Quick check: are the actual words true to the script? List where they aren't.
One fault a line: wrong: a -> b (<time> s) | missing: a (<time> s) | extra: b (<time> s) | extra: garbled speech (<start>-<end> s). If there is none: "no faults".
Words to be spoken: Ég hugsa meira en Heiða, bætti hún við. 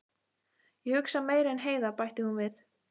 no faults